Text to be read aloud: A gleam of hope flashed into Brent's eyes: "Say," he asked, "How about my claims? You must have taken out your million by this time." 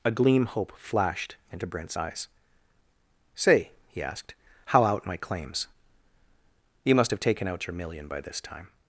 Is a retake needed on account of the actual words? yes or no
yes